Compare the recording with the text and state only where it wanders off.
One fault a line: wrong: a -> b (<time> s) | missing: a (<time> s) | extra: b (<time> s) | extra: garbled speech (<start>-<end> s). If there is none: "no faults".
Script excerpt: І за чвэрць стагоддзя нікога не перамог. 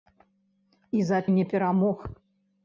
missing: чвэрць стагоддзя нікога (1.2 s)